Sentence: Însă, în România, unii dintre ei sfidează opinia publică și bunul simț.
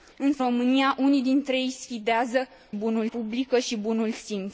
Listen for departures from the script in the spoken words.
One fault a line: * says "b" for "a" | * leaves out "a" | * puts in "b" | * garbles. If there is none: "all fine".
* leaves out "în"
* says "bunul" for "opinia"